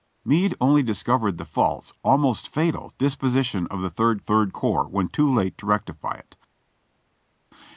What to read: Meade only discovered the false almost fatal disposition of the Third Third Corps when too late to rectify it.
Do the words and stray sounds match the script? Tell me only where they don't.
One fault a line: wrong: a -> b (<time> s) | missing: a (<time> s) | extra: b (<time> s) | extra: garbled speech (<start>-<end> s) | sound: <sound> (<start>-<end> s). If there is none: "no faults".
no faults